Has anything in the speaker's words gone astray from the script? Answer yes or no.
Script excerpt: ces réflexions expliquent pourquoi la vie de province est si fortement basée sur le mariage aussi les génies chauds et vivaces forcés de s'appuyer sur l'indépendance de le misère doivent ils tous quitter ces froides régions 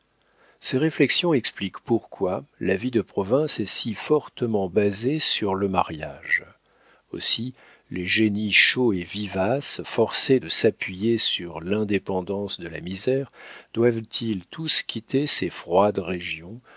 yes